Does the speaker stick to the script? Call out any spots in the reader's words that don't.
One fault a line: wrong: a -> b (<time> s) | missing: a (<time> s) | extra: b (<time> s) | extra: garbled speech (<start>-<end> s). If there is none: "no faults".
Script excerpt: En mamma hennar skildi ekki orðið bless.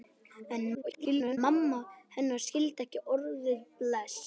extra: garbled speech (0.7-1.4 s)